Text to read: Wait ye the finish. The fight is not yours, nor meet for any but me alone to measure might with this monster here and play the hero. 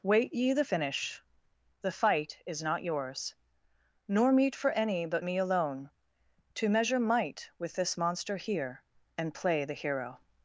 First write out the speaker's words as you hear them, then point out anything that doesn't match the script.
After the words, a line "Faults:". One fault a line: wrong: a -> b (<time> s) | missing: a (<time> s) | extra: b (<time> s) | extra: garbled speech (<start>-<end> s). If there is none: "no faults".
Wait ye the finish. The fight is not yours, nor meet for any but me alone to measure might with this monster here and play the hero.
Faults:
no faults